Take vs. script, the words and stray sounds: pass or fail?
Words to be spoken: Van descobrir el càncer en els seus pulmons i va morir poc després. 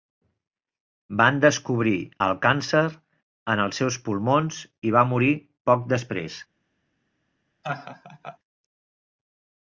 fail